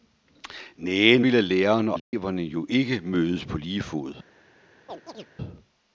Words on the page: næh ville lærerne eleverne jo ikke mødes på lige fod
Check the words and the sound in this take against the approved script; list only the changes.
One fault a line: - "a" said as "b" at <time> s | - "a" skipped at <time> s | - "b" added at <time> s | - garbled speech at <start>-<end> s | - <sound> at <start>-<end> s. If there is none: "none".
- dropout at 2.0-2.1 s
- chirp at 4.9-5.3 s